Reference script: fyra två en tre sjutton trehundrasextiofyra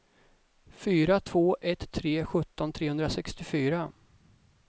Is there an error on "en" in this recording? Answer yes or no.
yes